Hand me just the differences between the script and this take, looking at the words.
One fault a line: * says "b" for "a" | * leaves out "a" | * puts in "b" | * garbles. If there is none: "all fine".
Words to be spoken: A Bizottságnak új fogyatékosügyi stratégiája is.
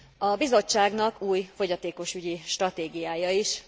all fine